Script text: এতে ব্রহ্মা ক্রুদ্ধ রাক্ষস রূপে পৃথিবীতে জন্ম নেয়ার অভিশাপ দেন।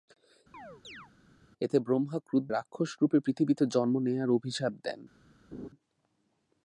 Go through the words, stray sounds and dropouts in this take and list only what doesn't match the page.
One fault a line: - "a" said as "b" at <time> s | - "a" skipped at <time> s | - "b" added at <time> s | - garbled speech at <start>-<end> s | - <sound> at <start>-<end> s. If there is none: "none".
- chirp at 0.5-1.1 s
- laugh at 5.5-5.7 s